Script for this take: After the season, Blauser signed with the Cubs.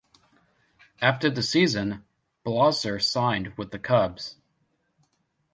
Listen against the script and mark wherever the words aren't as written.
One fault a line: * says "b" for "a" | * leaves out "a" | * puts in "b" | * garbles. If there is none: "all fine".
all fine